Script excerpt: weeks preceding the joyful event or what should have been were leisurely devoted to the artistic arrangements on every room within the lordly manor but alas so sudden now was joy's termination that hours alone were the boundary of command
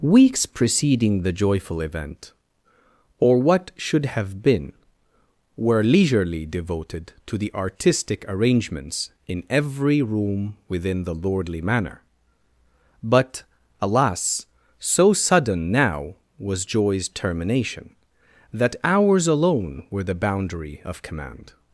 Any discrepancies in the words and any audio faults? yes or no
yes